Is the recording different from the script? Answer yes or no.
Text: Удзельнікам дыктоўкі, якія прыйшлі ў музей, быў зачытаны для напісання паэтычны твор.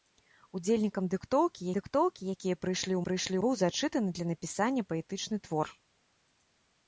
yes